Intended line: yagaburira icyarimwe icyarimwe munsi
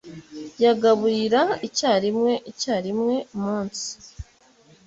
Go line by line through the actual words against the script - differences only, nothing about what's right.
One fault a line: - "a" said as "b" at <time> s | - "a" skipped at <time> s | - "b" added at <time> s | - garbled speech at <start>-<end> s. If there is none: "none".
none